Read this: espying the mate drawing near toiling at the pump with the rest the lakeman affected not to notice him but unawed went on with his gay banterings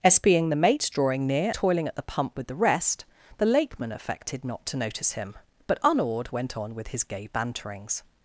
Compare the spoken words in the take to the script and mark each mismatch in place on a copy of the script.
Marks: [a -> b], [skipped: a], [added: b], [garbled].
espying the mate drawing near toiling at the pump with the rest the lakeman affected not to notice him but unawed went on with his gay banterings